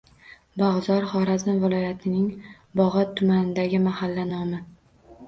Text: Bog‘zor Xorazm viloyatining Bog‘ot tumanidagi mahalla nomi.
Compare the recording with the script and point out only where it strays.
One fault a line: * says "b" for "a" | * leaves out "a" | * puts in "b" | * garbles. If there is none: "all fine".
all fine